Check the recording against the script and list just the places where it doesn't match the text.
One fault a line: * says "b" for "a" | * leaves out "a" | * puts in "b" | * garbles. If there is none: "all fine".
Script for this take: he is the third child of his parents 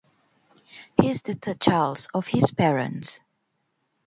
all fine